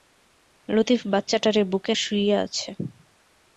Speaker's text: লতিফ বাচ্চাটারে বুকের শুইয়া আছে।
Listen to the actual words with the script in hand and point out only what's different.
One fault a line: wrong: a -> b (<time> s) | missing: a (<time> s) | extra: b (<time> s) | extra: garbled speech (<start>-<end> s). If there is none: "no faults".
no faults